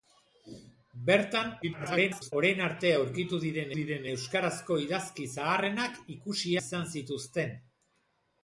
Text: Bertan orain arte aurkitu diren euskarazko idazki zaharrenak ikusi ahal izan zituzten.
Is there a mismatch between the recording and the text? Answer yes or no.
yes